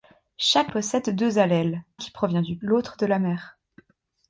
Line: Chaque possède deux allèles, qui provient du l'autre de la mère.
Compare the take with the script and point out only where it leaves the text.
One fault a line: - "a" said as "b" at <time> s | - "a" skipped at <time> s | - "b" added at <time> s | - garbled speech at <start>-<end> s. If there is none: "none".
none